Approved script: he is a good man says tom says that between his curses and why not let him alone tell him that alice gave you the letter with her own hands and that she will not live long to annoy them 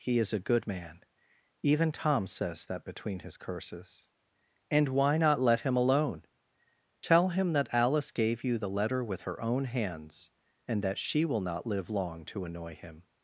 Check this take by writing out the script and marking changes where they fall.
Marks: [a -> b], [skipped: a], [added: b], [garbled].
he is a good man [says -> even] tom says that between his curses and why not let him alone tell him that alice gave you the letter with her own hands and that she will not live long to annoy [them -> him]